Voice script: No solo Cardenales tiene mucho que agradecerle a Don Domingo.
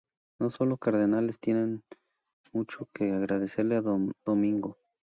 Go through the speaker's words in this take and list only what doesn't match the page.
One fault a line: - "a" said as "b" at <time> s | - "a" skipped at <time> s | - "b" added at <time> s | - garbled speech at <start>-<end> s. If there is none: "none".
none